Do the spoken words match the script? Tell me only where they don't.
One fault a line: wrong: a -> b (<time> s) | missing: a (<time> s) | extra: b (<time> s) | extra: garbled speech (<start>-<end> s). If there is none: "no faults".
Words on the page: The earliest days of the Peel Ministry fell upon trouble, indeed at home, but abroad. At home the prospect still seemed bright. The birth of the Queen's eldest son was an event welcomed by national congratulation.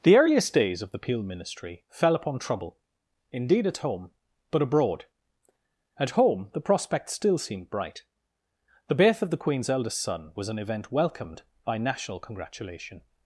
no faults